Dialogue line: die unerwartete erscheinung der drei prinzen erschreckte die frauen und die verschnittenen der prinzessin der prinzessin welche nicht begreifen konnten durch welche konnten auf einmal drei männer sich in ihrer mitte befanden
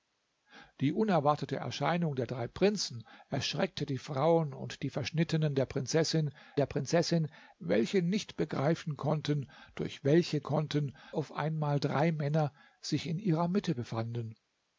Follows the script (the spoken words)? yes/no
yes